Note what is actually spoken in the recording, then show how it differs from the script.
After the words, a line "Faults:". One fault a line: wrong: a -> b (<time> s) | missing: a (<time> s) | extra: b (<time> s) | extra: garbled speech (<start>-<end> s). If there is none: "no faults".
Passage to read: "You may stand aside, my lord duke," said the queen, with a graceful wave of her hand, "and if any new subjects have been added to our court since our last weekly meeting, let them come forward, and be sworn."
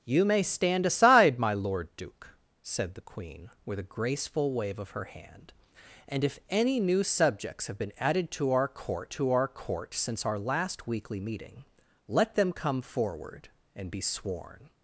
"You may stand aside, my lord duke," said the queen, with a graceful wave of her hand, "and if any new subjects have been added to our court to our court since our last weekly meeting, let them come forward, and be sworn."
Faults:
extra: to our court (9.1 s)